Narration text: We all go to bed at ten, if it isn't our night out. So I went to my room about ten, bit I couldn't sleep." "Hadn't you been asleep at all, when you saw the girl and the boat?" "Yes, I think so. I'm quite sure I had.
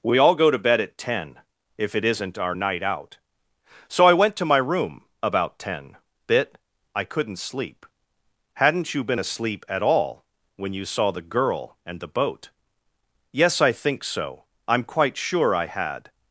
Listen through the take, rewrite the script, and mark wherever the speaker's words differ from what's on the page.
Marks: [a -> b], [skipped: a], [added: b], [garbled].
We all go to bed at ten, if it isn't our night out. So I went to my room about ten, bit I couldn't sleep." "Hadn't you been asleep at all, when you saw the girl and the boat?" "Yes, I think so. I'm quite sure I had.